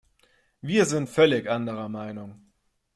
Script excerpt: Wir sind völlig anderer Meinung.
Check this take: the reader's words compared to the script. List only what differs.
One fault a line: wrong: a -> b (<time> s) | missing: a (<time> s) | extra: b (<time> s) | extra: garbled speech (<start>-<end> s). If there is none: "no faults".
no faults